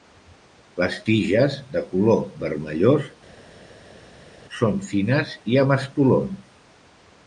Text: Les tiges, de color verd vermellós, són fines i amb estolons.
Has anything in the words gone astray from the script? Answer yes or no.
yes